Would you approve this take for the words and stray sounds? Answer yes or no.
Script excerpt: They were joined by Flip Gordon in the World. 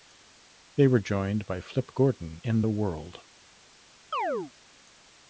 no